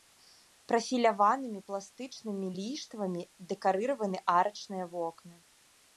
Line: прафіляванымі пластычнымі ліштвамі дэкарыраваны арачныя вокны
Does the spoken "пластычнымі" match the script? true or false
true